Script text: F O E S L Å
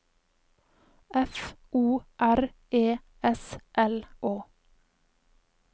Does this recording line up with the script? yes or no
no